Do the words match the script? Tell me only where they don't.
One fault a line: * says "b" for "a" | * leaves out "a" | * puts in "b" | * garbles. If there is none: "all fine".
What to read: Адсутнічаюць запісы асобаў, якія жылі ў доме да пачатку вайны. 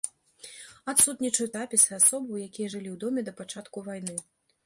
all fine